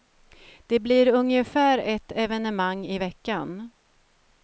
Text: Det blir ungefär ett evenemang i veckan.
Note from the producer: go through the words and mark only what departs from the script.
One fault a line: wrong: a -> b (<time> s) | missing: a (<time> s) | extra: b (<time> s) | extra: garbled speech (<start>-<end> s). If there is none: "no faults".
no faults